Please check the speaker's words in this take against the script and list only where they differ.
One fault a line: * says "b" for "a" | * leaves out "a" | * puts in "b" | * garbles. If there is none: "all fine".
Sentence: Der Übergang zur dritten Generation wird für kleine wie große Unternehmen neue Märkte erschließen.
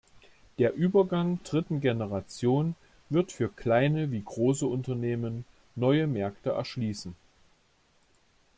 * leaves out "zur"